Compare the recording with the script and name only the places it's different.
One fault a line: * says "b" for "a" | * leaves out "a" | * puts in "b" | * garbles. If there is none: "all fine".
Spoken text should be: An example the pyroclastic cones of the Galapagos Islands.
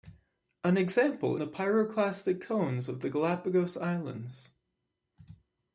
all fine